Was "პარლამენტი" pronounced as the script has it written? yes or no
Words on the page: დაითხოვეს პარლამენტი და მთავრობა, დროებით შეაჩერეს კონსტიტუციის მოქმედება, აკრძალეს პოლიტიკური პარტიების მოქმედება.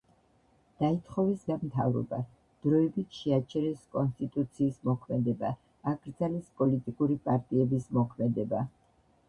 no